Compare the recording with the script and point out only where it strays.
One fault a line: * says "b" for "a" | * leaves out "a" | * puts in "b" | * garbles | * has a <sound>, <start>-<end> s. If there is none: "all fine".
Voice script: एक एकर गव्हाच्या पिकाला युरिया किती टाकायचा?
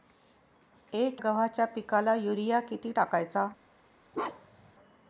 * leaves out "एकर"
* has a bark, 4.1-4.7 s